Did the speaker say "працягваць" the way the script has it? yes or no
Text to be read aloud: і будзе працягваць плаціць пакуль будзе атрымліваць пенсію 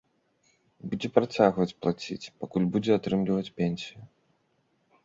yes